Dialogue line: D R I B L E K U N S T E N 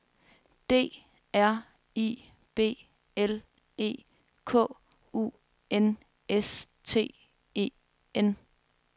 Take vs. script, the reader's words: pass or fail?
pass